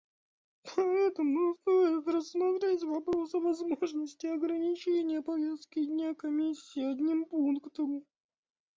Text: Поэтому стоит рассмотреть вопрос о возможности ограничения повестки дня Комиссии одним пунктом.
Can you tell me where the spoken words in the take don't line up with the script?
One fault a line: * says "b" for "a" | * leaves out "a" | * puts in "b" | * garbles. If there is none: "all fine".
all fine